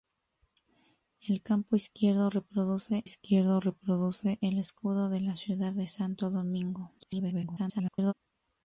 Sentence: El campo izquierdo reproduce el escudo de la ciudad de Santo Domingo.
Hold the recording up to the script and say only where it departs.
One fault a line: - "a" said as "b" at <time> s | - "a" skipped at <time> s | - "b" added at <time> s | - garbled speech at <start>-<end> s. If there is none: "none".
- "izquierdo reproduce" added at 3.0 s
- garbled speech at 7.0-8.1 s